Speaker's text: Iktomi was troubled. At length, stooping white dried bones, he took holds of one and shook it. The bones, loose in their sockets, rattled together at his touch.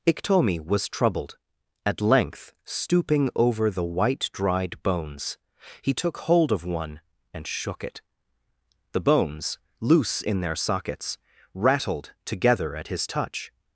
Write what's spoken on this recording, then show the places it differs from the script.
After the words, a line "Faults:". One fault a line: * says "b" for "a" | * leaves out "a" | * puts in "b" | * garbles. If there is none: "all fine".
Iktomi was troubled. At length, stooping over the white dried bones, he took hold of one and shook it. The bones, loose in their sockets, rattled together at his touch.
Faults:
* puts in "over the"
* says "hold" for "holds"